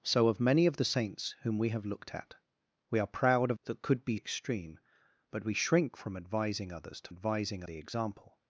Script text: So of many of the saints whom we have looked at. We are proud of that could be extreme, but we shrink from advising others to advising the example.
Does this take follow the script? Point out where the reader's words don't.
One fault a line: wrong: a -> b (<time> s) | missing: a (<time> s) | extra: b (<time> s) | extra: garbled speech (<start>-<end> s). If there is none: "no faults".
no faults